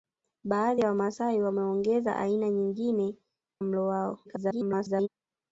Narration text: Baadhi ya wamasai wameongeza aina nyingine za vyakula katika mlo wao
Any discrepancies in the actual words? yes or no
yes